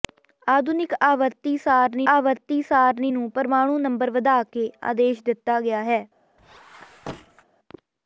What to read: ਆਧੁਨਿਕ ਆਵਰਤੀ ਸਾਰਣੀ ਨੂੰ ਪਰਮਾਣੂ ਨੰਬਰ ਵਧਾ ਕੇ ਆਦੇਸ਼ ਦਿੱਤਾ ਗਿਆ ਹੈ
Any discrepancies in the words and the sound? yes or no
yes